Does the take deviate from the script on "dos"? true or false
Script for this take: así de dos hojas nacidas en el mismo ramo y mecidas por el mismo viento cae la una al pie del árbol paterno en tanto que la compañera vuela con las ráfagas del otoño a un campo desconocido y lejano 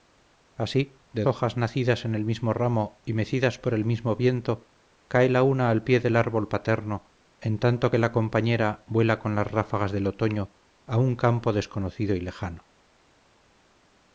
true